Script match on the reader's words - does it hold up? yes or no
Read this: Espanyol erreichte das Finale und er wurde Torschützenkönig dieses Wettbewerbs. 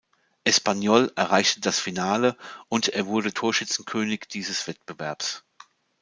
yes